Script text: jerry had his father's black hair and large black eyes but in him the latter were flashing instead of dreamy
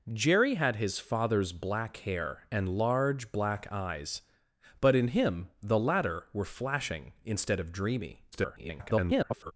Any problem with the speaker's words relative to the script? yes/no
yes